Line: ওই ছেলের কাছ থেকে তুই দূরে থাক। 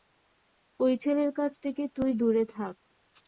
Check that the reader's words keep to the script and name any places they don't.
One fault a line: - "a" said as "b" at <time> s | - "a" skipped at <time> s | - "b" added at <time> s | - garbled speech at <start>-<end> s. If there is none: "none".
none